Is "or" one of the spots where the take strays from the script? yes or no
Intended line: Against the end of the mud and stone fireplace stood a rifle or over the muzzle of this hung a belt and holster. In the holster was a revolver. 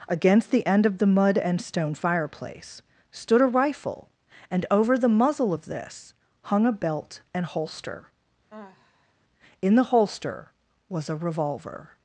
yes